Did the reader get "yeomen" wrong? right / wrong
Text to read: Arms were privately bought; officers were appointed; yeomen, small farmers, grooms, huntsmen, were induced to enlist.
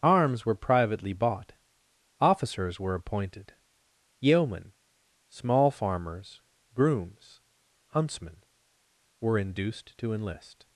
right